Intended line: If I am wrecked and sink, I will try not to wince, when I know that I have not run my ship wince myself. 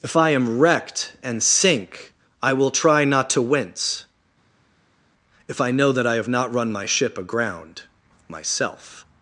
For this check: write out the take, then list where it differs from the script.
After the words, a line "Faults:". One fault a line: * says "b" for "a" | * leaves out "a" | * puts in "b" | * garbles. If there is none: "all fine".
If I am wrecked and sink, I will try not to wince, if I know that I have not run my ship aground myself.
Faults:
* says "if" for "when"
* says "aground" for "wince"